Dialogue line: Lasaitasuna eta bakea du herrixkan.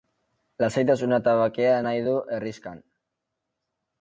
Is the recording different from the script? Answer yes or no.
yes